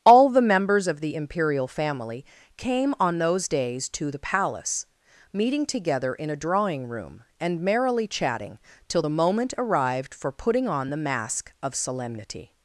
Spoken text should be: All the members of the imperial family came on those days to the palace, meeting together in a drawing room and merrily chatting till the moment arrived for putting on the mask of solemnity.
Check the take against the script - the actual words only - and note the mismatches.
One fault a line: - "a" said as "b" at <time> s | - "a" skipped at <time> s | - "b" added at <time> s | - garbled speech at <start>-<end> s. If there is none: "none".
none